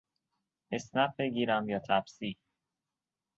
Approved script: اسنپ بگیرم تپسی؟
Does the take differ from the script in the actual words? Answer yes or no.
yes